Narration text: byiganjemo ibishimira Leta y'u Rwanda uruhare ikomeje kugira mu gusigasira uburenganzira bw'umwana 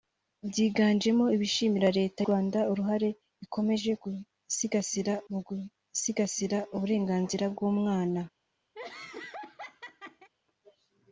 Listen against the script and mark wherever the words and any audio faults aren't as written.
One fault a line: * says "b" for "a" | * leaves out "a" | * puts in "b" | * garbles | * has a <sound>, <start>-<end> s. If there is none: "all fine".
* leaves out "y'u"
* says "gusigasira" for "kugira"
* has a laugh, 8.7-10.3 s